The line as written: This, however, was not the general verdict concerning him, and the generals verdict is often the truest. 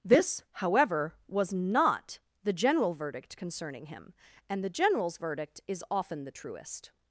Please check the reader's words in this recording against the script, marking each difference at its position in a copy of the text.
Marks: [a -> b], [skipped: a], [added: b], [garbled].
This, however, was not the general verdict concerning him, and the generals verdict is often the truest.